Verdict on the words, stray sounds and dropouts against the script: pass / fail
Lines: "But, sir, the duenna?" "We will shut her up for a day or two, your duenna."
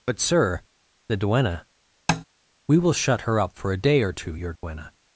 fail